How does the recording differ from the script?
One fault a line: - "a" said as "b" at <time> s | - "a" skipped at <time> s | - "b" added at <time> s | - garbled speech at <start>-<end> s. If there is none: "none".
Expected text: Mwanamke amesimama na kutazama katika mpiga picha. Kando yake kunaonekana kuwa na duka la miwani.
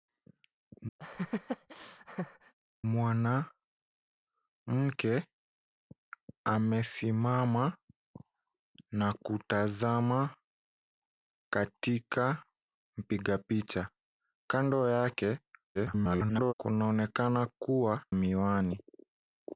- garbled speech at 15.7-16.5 s
- "na duka la" skipped at 18.0 s